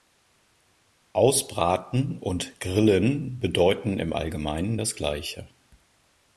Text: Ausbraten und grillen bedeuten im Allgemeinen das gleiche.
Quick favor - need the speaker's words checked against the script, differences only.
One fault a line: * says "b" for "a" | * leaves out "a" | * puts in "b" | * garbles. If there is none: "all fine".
all fine